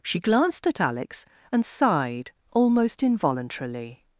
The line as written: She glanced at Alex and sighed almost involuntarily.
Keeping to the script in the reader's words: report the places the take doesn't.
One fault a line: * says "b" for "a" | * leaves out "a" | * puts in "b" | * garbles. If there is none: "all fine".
all fine